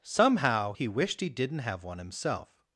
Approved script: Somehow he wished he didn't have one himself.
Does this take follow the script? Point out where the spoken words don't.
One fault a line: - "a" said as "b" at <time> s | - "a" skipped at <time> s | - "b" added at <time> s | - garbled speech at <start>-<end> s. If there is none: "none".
none